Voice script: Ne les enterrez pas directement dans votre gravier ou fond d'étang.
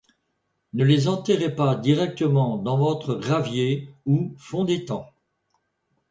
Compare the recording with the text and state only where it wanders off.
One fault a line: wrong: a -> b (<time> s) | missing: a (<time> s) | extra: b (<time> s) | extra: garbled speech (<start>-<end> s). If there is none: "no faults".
no faults